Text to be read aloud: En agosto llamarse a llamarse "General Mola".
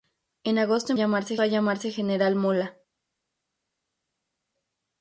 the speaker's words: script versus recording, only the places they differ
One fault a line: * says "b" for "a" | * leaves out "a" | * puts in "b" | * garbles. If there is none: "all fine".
all fine